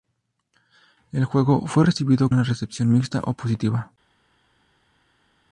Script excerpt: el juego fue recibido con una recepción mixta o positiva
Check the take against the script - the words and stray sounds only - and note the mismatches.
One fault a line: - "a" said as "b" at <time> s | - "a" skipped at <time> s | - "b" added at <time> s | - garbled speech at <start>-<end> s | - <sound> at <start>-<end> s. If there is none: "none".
- "con" skipped at 2.3 s